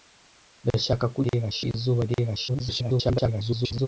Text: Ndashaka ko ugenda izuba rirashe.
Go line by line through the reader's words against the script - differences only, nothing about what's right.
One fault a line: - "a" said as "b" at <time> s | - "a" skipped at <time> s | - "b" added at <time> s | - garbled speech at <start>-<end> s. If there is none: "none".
- "ugenda" said as "rirashe" at 1.2 s
- garbled speech at 2.5-3.9 s